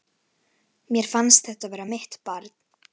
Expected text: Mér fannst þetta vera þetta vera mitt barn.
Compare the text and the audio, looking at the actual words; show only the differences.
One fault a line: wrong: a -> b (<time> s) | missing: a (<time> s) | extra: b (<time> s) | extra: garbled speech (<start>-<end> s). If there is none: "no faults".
missing: þetta vera (1.9 s)